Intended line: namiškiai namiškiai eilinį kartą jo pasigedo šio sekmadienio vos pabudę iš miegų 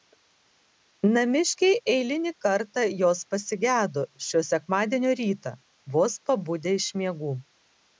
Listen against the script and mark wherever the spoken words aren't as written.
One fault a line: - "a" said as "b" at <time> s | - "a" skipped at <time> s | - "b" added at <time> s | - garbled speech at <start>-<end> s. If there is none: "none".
- "namiškiai" skipped at 1.8 s
- "jo" said as "jos" at 3.0 s
- "rytą" added at 5.2 s